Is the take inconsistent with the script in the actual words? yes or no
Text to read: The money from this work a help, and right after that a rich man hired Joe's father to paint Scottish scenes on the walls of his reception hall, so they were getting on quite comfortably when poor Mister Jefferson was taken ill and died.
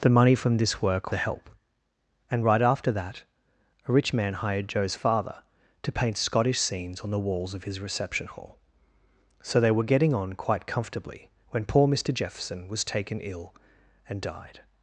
no